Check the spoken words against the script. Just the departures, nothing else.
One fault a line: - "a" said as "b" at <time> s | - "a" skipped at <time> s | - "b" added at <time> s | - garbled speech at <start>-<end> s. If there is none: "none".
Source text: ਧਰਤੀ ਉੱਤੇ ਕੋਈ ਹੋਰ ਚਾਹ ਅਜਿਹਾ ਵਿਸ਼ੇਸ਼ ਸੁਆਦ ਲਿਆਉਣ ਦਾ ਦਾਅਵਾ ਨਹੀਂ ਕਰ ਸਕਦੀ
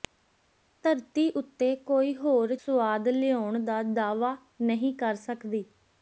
- "ਚਾਹ ਅਜਿਹਾ ਵਿਸ਼ੇਸ਼" skipped at 2.5 s